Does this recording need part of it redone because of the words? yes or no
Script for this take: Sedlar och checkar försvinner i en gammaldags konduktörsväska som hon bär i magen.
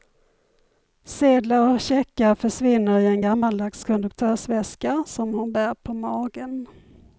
yes